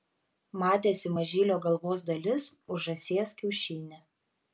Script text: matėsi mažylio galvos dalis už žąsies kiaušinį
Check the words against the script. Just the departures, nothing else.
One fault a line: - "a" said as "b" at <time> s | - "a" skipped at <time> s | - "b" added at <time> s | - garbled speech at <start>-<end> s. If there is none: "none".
none